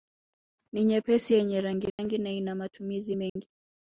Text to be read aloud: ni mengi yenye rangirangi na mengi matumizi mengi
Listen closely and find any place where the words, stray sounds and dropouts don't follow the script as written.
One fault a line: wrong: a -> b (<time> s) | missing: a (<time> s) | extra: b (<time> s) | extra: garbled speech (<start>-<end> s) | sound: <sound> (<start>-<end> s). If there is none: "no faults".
wrong: mengi -> nyepesi (0.8 s)
sound: dropout (1.9-2.0 s)
wrong: mengi -> ina (2.3 s)
sound: dropout (3.3-3.4 s)